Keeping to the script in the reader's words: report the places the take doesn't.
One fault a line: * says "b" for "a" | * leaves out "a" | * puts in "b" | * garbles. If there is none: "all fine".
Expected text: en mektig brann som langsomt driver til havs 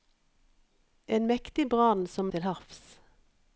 * leaves out "langsomt driver"